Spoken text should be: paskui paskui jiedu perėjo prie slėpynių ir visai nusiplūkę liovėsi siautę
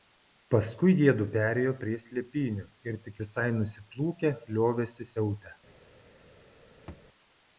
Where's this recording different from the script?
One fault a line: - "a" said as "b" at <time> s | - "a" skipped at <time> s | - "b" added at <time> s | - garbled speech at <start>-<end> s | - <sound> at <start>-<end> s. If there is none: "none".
- "paskui" skipped at 0.9 s
- "tik" added at 3.1 s
- thud at 6.9-7.1 s